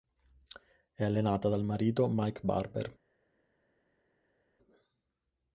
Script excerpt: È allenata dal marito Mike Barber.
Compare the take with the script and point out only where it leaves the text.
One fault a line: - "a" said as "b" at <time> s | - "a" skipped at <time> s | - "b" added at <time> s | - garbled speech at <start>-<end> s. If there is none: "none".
none